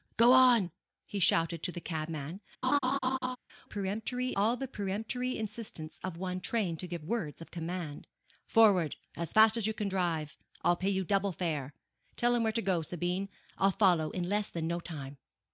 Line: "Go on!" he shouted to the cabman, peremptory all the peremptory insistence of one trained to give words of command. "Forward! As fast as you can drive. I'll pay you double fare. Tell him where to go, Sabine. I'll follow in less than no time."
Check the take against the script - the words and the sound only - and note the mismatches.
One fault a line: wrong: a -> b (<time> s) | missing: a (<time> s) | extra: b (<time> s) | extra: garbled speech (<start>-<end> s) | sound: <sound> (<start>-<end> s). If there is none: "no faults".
sound: laugh (2.6-3.4 s)